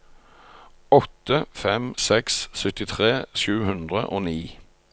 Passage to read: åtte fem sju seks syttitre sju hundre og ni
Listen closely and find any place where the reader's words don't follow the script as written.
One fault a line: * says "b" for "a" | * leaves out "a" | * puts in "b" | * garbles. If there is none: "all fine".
* leaves out "sju"